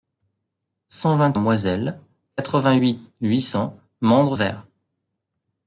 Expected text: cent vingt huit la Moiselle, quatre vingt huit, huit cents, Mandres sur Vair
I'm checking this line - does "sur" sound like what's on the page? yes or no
no